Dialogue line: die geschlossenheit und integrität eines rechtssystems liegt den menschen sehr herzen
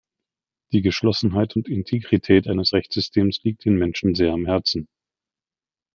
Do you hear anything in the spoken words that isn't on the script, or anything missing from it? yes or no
yes